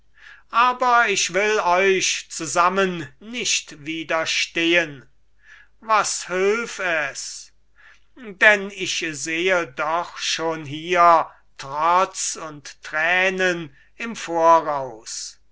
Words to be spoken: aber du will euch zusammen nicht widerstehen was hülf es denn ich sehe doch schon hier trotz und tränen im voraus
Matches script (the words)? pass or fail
fail